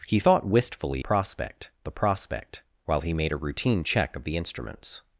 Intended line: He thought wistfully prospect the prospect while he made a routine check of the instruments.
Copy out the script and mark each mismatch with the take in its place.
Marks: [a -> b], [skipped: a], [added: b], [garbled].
He thought wistfully prospect the prospect while he made a routine check of the instruments.